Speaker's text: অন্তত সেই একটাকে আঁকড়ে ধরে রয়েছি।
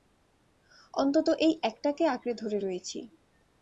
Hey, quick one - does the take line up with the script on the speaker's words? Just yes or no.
no